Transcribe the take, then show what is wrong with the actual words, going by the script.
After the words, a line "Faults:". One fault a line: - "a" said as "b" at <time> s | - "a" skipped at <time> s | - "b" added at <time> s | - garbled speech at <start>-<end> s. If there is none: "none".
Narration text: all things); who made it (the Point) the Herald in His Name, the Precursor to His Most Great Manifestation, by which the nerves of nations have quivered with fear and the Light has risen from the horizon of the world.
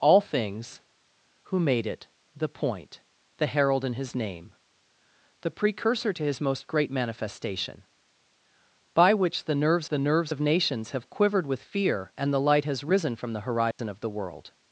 all things); who made it (the Point) the Herald in His Name, the Precursor to His Most Great Manifestation, by which the nerves the nerves of nations have quivered with fear and the Light has risen from the horizon of the world.
Faults:
- "the nerves" added at 9.9 s